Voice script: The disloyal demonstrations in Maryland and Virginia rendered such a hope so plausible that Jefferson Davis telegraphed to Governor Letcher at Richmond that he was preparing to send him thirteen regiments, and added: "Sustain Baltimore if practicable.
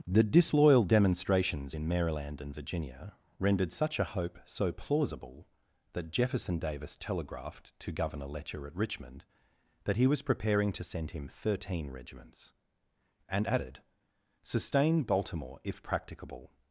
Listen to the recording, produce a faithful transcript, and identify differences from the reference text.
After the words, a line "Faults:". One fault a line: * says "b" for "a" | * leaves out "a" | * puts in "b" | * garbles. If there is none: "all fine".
The disloyal demonstrations in Maryland and Virginia rendered such a hope so plausible that Jefferson Davis telegraphed to Governor Letcher at Richmond that he was preparing to send him thirteen regiments, and added: "Sustain Baltimore if practicable.
Faults:
all fine